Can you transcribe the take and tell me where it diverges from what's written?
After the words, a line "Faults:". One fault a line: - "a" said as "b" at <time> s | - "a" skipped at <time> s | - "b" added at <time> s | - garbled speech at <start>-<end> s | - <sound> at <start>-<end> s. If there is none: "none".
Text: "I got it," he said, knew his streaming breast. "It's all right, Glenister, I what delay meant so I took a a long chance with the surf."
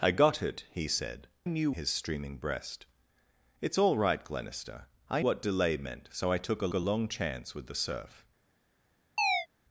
"I got it," he said, knew his streaming breast. "It's all right, Glenister, I what delay meant so I took a a long chance with the surf."
Faults:
- chirp at 9.2-9.5 s